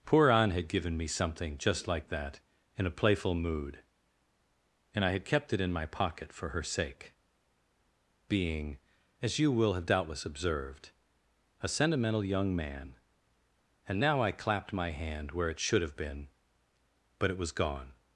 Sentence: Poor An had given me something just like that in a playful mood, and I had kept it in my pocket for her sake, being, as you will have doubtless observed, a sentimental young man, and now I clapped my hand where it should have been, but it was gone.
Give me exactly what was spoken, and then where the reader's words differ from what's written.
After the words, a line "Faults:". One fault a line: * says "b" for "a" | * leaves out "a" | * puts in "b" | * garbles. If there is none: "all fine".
Poor An had given me something just like that in a playful mood, and I had kept it in my pocket for her sake, being, as you will have doubtless observed, a sentimental young man, and now I clapped my hand where it should have been, but it was gone.
Faults:
all fine